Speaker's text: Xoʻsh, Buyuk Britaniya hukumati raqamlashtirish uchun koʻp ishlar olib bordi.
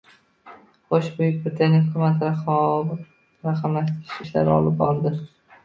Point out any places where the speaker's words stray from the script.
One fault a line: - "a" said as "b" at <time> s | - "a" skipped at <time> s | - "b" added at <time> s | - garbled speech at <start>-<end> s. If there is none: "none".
- "uchun koʻp" skipped at 4.2 s